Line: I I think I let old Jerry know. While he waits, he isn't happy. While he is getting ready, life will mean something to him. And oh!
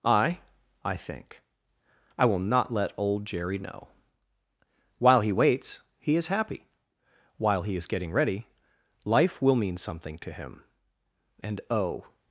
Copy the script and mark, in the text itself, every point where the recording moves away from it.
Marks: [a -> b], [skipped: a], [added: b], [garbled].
I I think I [added: will not] let old Jerry know. While he waits, he [isn't -> is] happy. While he is getting ready, life will mean something to him. And oh!